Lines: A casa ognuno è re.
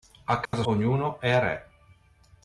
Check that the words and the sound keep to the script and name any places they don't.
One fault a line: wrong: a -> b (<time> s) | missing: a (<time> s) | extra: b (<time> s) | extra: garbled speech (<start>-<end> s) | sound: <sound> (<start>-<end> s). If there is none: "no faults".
sound: dropout (0.5-0.5 s)